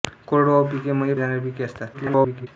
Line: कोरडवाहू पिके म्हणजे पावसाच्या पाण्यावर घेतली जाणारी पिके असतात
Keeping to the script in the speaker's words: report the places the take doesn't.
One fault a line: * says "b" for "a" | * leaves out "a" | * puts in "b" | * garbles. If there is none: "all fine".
* leaves out "पावसाच्या पाण्यावर घेतली"
* garbles